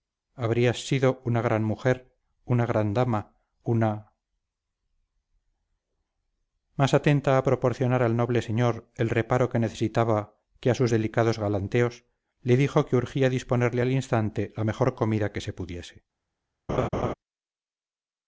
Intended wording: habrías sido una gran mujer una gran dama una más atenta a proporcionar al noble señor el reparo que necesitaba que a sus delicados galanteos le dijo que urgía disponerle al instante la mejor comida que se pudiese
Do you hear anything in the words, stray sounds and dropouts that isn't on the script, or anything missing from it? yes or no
yes